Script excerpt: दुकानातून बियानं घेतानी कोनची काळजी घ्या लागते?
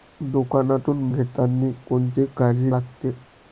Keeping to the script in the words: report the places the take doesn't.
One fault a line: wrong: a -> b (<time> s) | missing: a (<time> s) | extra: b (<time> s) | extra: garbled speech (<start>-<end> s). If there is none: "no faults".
missing: बियानं (1.1 s)
missing: घ्या (2.7 s)